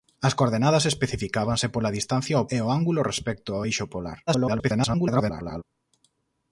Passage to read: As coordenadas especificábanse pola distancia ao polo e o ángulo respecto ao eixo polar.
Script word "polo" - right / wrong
wrong